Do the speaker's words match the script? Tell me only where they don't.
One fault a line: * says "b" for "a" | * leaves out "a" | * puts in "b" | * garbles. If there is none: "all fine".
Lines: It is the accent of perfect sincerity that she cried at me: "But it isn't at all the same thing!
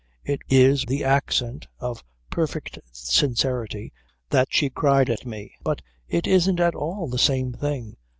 all fine